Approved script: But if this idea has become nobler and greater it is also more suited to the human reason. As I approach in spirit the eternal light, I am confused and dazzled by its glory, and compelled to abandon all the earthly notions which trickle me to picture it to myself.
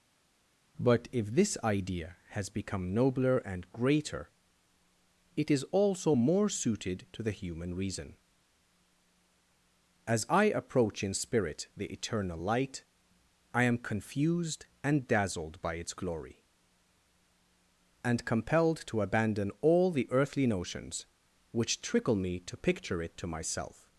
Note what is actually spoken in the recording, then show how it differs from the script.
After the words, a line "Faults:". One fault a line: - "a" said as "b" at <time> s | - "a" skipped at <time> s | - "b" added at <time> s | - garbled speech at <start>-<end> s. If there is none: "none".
But if this idea has become nobler and greater it is also more suited to the human reason. As I approach in spirit the eternal light, I am confused and dazzled by its glory, and compelled to abandon all the earthly notions which trickle me to picture it to myself.
Faults:
none